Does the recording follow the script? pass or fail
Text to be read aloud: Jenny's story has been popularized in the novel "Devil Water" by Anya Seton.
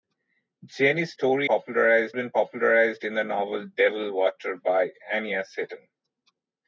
fail